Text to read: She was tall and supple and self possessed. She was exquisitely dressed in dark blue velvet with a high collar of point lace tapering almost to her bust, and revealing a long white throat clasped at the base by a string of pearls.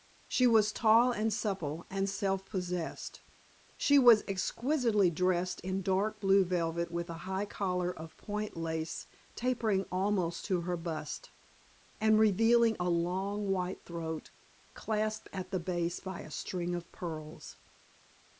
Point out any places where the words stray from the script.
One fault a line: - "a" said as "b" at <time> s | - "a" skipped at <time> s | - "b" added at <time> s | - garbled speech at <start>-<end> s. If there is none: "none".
none